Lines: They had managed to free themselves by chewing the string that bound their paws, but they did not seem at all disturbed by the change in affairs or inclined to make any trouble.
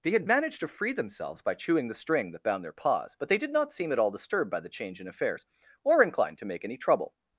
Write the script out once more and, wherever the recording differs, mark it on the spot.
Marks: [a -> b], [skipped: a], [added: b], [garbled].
They had managed to free themselves by chewing the string that bound their paws, but they did not seem at all disturbed by the change in affairs or inclined to make any trouble.